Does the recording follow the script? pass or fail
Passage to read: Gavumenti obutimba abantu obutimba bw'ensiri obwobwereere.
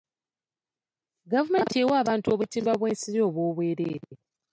fail